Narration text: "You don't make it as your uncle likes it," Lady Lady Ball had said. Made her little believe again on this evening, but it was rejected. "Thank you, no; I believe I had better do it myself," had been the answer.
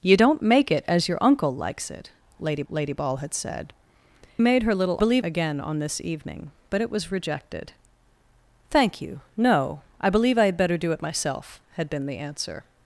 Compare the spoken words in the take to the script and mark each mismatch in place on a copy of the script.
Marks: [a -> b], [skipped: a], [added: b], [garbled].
"You don't make it as your uncle likes it," Lady Lady Ball had said. Made her little believe again on this evening, but it was rejected. "Thank you, no; I believe I had better do it myself," had been the answer.